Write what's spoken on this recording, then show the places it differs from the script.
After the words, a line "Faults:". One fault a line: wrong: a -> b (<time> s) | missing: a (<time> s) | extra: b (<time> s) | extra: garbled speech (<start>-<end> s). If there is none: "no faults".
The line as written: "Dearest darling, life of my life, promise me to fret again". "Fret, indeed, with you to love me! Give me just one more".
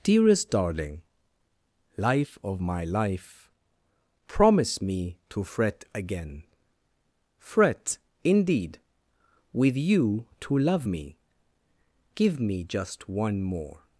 "Dearest darling, life of my life, promise me to fret again". "Fret, indeed, with you to love me! Give me just one more".
Faults:
no faults